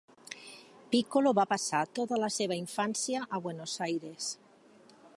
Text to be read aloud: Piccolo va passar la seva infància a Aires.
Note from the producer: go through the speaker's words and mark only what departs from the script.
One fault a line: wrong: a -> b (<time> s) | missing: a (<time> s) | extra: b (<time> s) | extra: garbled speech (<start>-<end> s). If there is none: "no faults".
extra: tota (2.0 s)
extra: Buenos (3.5 s)